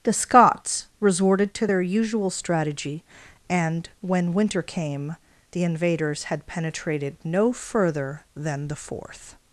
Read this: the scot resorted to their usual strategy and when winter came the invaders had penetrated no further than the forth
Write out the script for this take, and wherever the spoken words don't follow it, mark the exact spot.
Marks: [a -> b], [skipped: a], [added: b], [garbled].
the [scot -> scots] resorted to their usual strategy and when winter came the invaders had penetrated no further than the forth